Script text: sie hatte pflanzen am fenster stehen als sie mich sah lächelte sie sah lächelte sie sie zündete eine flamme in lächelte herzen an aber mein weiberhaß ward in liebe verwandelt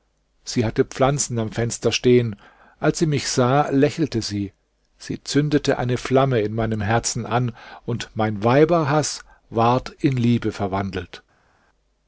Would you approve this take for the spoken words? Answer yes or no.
no